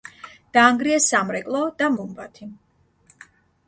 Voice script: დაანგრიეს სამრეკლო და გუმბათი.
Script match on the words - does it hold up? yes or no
yes